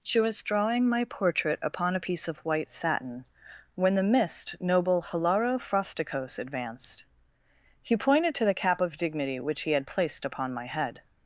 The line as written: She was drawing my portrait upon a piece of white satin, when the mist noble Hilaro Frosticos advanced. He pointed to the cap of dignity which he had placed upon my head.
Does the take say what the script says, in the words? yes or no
yes